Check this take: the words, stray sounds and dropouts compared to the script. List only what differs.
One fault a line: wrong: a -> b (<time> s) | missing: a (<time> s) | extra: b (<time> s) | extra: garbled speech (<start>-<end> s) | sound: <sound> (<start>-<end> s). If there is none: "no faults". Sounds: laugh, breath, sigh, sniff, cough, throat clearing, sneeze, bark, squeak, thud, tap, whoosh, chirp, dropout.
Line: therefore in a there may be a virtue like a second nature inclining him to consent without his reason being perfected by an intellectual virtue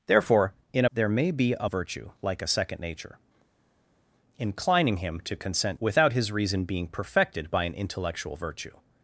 no faults